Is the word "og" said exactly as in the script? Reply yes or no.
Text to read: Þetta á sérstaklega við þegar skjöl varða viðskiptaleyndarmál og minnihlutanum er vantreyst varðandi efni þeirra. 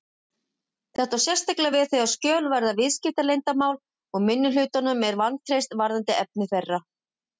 yes